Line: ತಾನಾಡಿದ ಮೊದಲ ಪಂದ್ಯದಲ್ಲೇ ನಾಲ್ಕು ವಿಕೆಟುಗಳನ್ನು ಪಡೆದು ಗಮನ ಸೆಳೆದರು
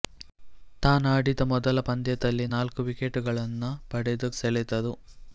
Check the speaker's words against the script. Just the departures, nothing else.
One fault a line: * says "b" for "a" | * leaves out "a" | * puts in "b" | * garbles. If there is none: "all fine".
* leaves out "ಗಮನ"